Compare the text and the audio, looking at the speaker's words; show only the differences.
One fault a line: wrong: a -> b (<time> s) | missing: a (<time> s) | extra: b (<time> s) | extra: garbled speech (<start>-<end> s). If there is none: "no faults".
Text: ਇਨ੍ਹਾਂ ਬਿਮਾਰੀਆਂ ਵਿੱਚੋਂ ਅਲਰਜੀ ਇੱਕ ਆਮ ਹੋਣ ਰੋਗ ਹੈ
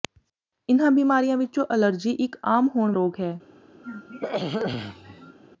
no faults